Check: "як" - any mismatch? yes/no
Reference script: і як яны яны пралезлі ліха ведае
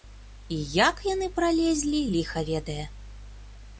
no